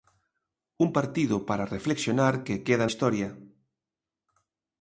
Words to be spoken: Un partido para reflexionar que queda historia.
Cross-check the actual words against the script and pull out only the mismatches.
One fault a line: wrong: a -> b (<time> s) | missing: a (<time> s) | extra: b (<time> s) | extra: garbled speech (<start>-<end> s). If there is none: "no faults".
no faults